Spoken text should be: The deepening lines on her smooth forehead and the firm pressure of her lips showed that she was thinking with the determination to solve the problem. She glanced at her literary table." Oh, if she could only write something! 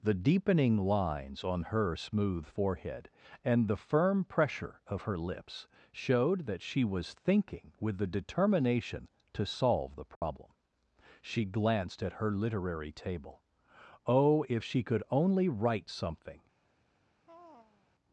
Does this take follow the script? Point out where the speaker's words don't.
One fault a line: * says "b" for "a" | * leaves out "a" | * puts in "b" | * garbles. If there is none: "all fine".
all fine